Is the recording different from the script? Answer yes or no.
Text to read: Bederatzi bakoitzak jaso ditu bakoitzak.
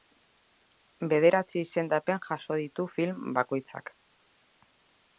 yes